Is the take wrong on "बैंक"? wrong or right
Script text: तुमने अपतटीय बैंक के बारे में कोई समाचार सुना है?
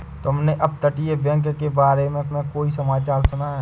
right